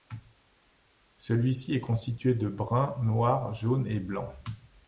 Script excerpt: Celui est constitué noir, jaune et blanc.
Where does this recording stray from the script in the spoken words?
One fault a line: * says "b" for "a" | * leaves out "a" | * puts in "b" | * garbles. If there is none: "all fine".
* puts in "ci"
* puts in "de brun"